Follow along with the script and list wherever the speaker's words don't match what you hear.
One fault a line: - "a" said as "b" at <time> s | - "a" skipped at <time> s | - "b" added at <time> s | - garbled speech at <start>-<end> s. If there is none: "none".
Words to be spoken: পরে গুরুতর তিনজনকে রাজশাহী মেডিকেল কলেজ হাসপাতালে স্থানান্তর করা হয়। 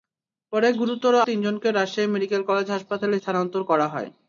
none